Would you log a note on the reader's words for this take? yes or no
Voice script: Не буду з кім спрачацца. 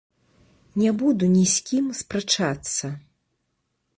yes